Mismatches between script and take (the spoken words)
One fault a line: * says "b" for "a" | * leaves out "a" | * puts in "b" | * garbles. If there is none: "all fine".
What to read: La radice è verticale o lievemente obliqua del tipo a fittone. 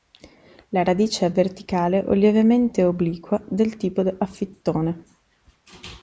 all fine